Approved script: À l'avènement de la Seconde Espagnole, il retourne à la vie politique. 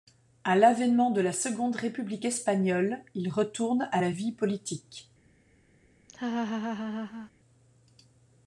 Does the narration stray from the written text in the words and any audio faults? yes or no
yes